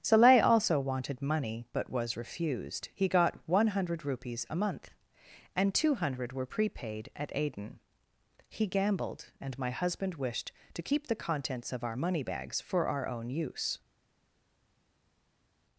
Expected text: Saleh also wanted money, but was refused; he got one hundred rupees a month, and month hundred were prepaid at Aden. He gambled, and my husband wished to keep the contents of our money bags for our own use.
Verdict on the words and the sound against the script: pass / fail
fail